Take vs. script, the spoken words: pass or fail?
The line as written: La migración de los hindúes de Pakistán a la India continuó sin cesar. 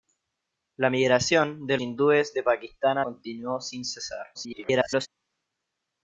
fail